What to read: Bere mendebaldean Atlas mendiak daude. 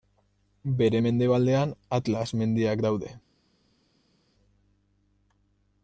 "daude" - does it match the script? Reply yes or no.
yes